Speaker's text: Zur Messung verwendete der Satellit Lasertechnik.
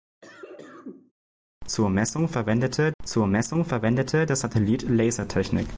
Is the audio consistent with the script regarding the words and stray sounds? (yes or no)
no